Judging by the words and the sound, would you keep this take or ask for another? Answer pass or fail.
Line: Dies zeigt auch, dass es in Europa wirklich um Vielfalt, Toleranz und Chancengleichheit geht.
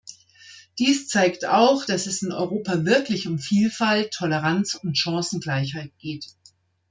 pass